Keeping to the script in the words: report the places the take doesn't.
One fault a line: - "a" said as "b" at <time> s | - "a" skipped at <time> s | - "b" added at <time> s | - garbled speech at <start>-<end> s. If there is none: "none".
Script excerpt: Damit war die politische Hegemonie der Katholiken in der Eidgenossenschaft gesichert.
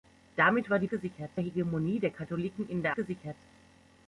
- "politische" said as "gesichert" at 0.9 s
- "Eidgenossenschaft" skipped at 2.9 s